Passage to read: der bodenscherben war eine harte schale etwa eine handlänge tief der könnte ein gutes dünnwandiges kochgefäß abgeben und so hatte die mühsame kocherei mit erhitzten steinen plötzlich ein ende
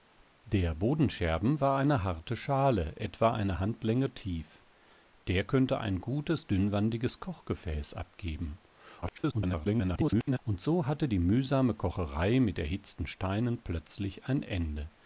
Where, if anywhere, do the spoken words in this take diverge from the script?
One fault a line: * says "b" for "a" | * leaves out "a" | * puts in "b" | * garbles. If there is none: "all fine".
* garbles